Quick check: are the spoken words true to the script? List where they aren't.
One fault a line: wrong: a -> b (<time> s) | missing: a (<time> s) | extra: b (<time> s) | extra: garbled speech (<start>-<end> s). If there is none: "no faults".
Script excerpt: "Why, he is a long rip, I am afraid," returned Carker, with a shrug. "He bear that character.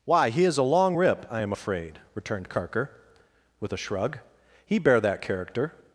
no faults